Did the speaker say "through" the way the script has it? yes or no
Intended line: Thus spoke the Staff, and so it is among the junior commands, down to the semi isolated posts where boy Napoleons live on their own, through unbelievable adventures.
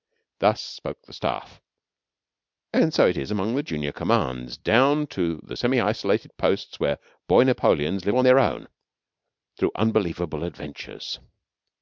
yes